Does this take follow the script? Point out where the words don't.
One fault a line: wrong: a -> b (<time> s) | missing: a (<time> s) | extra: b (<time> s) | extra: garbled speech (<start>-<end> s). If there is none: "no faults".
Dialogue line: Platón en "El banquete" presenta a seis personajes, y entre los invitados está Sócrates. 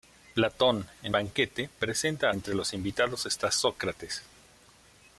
missing: El (1.1 s)
missing: seis personajes y (2.4 s)